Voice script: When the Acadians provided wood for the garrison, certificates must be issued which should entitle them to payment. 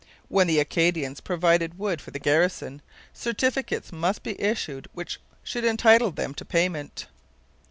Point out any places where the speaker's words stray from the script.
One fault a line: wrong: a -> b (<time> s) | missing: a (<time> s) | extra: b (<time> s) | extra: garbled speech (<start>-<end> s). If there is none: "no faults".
no faults